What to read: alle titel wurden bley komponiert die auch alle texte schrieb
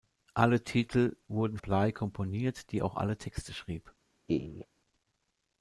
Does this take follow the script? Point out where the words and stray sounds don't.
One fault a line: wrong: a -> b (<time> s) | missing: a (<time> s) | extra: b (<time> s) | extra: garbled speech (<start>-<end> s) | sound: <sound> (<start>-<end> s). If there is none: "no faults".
sound: laugh (4.3-4.7 s)